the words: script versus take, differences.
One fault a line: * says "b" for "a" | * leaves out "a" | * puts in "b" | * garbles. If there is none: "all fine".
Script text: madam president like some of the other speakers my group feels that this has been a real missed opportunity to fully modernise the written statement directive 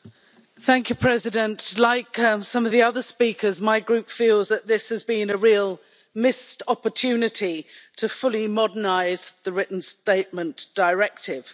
all fine